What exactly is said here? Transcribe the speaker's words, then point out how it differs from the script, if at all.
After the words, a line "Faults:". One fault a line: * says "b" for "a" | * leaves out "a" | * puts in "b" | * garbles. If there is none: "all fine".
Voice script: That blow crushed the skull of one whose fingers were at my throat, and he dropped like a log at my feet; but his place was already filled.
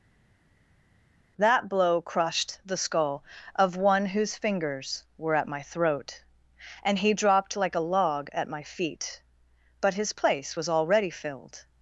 That blow crushed the skull of one whose fingers were at my throat, and he dropped like a log at my feet; but his place was already filled.
Faults:
all fine